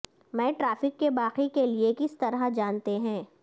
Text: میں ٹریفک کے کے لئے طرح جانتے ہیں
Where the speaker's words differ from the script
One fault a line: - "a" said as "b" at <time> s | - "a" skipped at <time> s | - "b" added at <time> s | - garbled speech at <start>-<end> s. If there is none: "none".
- "باقی" added at 1.1 s
- "کس" added at 2.0 s